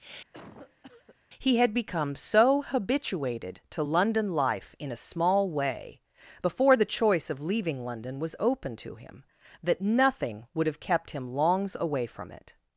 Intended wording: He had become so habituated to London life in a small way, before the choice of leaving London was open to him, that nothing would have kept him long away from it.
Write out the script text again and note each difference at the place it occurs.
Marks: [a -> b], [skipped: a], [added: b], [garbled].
He had become so habituated to London life in a small way, before the choice of leaving London was open to him, that nothing would have kept him [long -> longs] away from it.